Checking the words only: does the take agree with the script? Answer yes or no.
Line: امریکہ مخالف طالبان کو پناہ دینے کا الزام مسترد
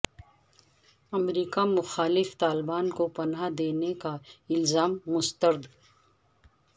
yes